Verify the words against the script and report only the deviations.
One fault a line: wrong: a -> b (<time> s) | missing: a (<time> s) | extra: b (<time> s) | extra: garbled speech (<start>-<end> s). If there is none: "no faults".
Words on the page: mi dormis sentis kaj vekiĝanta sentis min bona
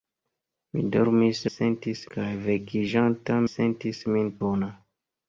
no faults